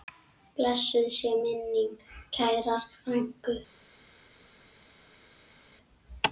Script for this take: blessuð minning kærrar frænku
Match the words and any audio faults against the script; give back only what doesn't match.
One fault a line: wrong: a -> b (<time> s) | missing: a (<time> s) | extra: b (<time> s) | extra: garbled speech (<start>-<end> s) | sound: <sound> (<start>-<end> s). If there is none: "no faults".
extra: sé (1.2 s)